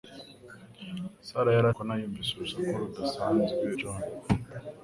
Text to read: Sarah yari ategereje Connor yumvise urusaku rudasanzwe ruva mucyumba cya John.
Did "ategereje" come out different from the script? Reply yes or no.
yes